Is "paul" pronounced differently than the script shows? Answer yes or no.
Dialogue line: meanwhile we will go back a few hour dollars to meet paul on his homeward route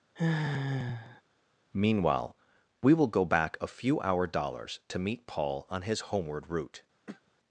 no